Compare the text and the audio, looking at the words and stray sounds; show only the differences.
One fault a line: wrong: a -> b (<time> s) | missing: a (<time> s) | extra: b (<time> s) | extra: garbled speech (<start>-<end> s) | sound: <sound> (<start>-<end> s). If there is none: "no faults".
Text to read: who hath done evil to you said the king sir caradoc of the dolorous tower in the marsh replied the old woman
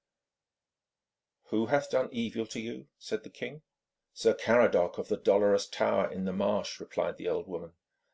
no faults